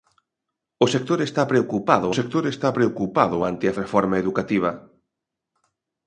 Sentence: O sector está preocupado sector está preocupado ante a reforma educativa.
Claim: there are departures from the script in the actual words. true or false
false